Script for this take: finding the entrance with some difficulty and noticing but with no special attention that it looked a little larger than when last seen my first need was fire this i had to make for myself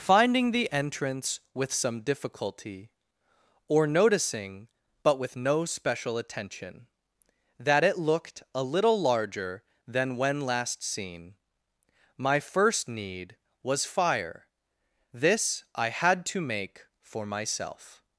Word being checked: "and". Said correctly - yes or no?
no